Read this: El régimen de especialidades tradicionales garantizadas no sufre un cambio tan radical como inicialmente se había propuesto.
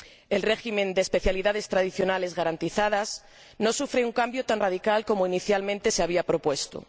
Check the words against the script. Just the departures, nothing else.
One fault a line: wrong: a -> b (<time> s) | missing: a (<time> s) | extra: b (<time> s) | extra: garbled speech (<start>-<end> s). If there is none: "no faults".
no faults